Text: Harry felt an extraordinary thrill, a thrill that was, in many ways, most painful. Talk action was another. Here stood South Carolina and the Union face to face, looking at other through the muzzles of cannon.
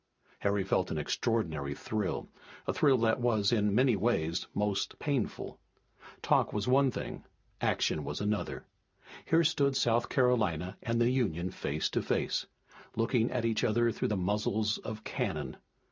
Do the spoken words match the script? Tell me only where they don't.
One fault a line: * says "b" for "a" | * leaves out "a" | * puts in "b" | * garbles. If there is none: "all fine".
* puts in "was one thing"
* puts in "each"